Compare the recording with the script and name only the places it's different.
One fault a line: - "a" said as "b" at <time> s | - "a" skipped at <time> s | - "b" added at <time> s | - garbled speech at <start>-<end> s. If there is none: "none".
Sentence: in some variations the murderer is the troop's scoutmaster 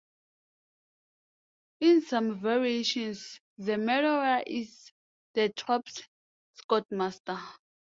none